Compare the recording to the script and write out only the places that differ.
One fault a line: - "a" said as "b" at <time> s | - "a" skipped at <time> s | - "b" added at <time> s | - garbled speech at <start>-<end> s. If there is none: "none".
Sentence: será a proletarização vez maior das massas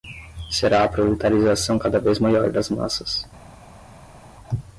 - "cada" added at 1.7 s